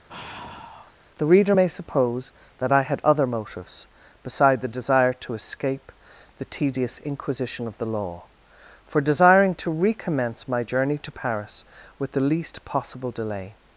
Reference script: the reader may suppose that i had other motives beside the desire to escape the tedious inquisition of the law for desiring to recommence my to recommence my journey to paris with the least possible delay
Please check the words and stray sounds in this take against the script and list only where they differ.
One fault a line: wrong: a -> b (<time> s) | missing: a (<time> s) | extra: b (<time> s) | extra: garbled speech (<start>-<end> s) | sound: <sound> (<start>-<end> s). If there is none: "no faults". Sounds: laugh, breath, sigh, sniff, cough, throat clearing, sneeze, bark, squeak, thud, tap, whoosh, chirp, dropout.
sound: sigh (0.1-0.9 s)
missing: to recommence my (10.6 s)